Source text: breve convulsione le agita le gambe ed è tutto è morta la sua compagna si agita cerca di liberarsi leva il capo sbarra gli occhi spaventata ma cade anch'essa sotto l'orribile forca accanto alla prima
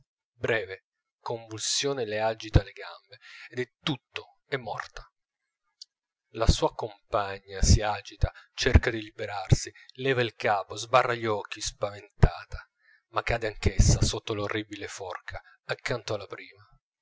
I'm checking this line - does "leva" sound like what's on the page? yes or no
yes